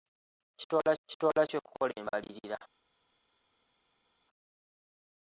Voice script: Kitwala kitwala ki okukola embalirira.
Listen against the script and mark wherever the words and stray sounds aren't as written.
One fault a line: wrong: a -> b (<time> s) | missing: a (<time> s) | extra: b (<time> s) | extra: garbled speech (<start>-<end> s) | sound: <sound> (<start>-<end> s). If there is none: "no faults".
no faults